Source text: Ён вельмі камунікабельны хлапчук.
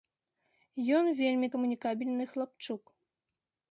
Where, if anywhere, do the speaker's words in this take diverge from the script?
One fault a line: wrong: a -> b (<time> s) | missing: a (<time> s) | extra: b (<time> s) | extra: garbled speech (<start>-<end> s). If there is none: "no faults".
no faults